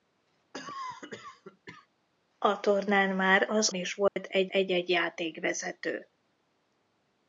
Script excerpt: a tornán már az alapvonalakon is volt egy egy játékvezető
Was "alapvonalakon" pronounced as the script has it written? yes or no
no